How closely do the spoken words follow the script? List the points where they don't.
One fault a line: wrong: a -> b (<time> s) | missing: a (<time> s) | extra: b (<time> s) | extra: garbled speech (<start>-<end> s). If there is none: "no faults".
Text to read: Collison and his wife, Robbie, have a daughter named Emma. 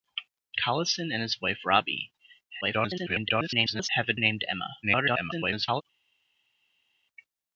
extra: garbled speech (2.6-3.9 s)
missing: daughter (4.1 s)
extra: garbled speech (4.8-5.8 s)